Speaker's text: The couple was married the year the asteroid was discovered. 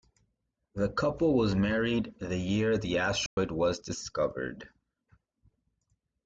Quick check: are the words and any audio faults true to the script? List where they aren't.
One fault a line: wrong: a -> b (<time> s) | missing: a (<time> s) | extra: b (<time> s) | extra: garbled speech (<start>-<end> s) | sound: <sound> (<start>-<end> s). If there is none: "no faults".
sound: dropout (3.3-3.4 s)